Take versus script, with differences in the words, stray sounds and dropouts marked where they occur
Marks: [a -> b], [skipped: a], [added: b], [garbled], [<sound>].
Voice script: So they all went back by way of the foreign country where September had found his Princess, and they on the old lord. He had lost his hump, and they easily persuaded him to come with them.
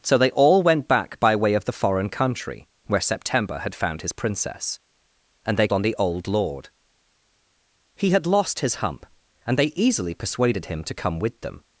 So they all went back by way of the foreign country where September had found his Princess, and they on the old lord. He had lost his hump, and they easily persuaded him to come with them.